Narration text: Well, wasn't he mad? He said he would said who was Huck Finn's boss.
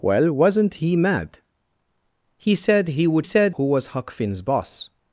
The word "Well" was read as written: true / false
true